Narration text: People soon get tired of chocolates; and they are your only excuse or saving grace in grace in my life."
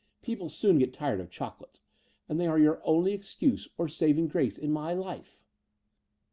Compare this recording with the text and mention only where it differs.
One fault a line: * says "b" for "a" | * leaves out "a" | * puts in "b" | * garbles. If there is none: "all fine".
* leaves out "grace in"